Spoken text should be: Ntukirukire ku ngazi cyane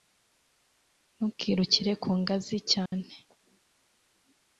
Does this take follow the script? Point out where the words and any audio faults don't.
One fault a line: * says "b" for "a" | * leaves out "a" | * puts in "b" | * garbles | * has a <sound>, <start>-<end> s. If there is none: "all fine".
* has a dropout, 2.9-2.9 s